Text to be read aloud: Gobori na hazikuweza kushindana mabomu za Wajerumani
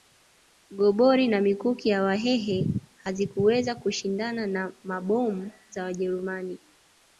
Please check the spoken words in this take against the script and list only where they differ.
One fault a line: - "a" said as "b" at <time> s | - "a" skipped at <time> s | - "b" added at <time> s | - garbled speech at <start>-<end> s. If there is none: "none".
- "mikuki ya Wahehe" added at 1.4 s
- "na" added at 4.5 s